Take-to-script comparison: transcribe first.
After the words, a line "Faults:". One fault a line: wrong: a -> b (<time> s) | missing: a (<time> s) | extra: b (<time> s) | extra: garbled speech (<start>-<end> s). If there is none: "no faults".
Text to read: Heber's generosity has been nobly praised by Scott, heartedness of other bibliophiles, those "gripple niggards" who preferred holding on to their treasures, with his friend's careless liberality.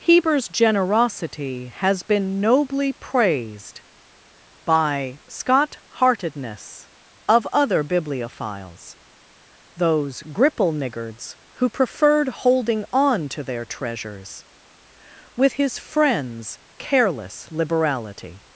Heber's generosity has been nobly praised by Scott, heartedness of other bibliophiles, those "gripple niggards" who preferred holding on to their treasures, with his friend's careless liberality.
Faults:
no faults